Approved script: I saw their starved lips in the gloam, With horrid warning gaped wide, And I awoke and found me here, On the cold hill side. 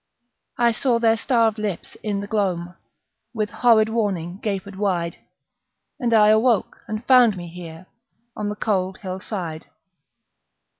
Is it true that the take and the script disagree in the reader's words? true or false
false